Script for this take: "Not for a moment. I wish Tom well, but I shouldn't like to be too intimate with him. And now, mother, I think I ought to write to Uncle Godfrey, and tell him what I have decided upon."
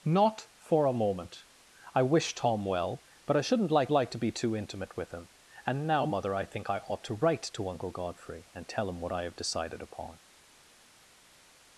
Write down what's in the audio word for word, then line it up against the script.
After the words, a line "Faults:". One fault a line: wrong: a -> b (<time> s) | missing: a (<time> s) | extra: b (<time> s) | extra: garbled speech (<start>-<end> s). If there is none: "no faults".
"Not for a moment. I wish Tom well, but I shouldn't like like to be too intimate with him. And now, mother, I think I ought to write to Uncle Godfrey, and tell him what I have decided upon."
Faults:
extra: like (3.9 s)